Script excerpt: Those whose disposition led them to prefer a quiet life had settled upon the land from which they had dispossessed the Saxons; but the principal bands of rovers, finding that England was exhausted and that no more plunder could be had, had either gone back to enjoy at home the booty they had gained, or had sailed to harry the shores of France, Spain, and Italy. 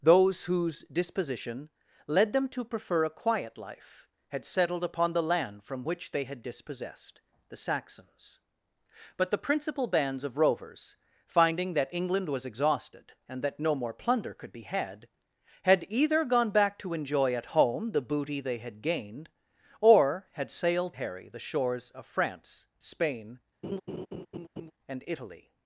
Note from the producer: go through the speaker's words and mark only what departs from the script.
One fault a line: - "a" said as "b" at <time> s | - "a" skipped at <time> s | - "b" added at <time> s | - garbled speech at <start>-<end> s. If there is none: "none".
- "to" skipped at 20.9 s